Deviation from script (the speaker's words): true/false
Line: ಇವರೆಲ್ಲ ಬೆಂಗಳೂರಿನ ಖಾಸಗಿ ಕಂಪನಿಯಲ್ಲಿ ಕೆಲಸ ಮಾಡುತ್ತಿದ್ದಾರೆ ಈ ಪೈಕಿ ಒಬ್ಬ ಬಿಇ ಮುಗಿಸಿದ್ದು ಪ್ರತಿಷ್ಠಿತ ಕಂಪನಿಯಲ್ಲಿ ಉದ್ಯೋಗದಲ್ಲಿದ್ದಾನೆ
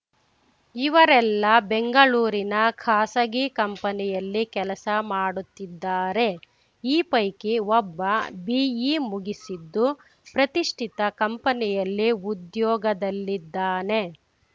false